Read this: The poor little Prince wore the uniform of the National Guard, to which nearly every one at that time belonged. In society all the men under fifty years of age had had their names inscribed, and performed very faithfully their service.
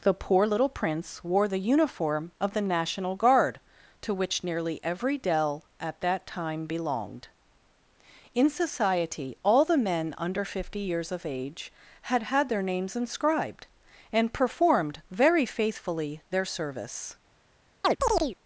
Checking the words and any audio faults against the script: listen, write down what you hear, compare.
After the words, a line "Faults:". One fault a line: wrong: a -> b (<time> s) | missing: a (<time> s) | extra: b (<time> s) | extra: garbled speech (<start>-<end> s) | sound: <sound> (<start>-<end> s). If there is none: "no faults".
The poor little Prince wore the uniform of the National Guard, to which nearly every dell at that time belonged. In society all the men under fifty years of age had had their names inscribed, and performed very faithfully their service.
Faults:
wrong: one -> dell (5.2 s)
sound: chirp (17.8-18.4 s)